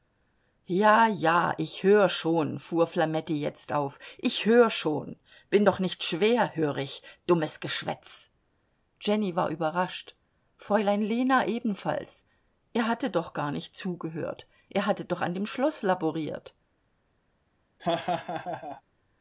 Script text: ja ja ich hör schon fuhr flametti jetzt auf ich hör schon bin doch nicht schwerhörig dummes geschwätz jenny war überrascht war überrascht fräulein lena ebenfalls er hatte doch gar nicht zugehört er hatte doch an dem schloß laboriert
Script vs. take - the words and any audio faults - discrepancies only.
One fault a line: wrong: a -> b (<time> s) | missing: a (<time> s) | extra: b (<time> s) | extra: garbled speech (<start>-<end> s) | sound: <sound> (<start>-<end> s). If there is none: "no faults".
missing: war überrascht (10.2 s)
sound: laugh (17.8-18.8 s)